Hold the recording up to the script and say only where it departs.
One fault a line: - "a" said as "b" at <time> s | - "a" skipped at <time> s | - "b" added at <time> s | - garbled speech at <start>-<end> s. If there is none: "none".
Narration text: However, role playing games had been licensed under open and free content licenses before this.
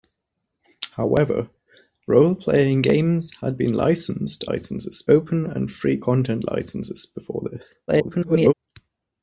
- "under" said as "licenses" at 4.4 s
- garbled speech at 7.9-8.5 s